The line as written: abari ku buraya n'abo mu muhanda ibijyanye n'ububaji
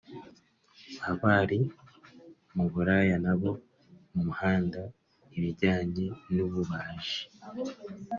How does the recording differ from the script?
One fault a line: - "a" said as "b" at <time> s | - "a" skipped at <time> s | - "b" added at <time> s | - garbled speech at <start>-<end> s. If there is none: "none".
- "ku" said as "mu" at 2.5 s